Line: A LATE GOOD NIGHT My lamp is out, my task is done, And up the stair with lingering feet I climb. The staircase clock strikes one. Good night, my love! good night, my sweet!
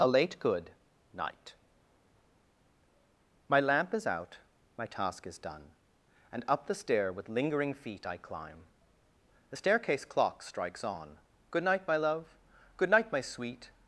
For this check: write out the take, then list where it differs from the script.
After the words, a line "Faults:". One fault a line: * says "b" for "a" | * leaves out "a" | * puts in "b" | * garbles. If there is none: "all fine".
A LATE GOOD NIGHT My lamp is out, my task is done, And up the stair with lingering feet I climb. The staircase clock strikes on. Good night, my love! good night, my sweet!
Faults:
* says "on" for "one"